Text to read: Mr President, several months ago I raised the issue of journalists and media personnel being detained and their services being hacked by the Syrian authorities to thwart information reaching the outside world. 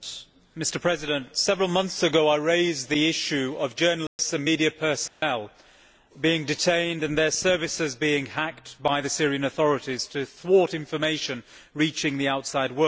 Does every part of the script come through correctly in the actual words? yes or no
yes